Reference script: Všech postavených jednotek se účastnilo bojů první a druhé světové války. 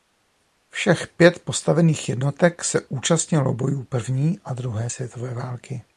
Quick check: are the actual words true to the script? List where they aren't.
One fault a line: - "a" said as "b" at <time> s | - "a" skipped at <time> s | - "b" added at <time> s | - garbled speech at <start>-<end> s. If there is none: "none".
- "pět" added at 1.1 s